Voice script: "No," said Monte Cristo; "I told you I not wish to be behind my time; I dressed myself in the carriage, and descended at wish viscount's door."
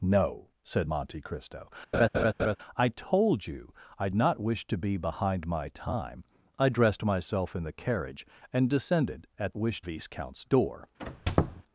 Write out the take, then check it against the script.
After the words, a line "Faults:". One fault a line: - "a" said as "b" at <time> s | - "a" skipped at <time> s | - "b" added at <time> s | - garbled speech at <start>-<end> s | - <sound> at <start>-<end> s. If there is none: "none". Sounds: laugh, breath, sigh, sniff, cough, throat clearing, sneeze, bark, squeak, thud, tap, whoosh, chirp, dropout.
"No," said Monte Cristo; "I told you I not wish to be behind my time; I dressed myself in the carriage, and descended at wish viscount's door."
Faults:
- laugh at 1.9-2.6 s
- squeak at 11.0-11.6 s